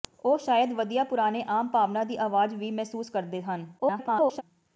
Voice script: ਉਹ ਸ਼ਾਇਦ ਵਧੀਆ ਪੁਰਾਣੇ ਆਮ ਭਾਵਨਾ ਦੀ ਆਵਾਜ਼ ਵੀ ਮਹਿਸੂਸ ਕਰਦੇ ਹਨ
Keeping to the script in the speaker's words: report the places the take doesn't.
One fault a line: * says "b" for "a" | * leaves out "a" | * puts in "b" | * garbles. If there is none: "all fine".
* garbles